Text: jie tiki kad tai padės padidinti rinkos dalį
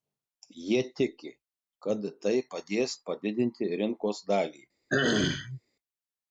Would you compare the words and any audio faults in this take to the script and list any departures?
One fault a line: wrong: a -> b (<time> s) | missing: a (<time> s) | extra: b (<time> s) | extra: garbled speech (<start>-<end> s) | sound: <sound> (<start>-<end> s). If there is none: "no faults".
sound: throat clearing (4.9-5.6 s)